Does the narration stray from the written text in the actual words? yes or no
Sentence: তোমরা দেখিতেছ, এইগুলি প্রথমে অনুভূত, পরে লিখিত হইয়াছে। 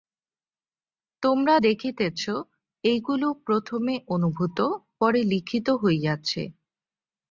no